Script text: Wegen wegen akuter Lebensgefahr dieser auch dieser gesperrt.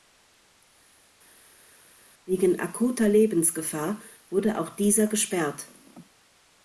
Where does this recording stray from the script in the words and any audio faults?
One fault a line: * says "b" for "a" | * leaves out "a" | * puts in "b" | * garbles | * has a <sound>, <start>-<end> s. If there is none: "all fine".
* leaves out "wegen"
* says "wurde" for "dieser"